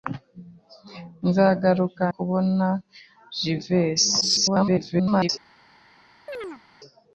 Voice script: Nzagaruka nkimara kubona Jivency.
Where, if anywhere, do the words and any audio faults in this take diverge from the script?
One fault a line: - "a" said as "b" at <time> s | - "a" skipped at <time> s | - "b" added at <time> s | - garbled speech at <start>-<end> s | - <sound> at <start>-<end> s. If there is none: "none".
- "nkimara" skipped at 2.0 s
- garbled speech at 4.2-5.3 s
- chirp at 6.3-6.6 s